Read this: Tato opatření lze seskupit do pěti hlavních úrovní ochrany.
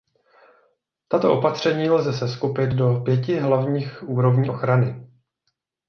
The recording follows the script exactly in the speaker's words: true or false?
true